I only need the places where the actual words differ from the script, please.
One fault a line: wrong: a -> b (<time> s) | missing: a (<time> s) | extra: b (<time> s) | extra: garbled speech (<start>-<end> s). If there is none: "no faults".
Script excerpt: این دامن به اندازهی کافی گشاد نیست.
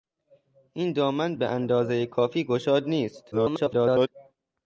extra: garbled speech (3.3-4.1 s)